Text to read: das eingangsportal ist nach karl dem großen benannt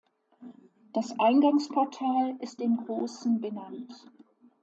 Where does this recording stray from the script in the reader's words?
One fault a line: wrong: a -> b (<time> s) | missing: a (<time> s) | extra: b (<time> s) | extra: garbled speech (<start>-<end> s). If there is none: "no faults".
missing: nach karl (2.6 s)